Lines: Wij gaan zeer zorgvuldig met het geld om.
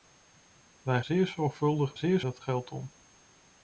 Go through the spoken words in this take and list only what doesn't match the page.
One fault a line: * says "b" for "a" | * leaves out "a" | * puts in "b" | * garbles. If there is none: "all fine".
* leaves out "gaan"
* says "zeer" for "met"